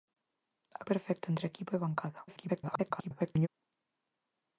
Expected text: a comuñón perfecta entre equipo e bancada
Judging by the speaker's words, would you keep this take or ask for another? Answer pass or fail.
fail